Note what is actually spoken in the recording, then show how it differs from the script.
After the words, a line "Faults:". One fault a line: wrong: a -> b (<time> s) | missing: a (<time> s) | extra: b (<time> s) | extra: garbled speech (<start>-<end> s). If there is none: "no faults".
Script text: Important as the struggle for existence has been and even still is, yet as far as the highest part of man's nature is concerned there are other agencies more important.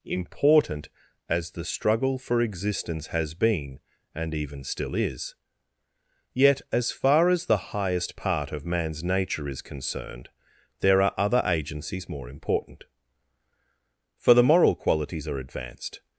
Important as the struggle for existence has been and even still is, yet as far as the highest part of man's nature is concerned there are other agencies more important. For the moral qualities are advanced
Faults:
extra: For the moral qualities are advanced (14.2 s)